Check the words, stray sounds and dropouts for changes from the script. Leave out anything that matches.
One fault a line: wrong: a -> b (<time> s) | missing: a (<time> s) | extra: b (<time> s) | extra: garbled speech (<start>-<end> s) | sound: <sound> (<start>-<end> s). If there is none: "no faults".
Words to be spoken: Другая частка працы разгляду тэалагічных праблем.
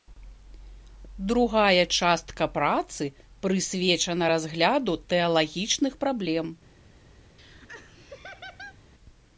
extra: прысвечана (3.5 s)
sound: laugh (7.4-8.8 s)